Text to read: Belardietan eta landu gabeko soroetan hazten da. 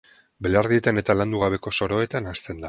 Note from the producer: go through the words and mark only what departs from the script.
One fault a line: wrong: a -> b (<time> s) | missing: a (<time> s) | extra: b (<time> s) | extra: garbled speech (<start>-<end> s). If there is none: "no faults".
no faults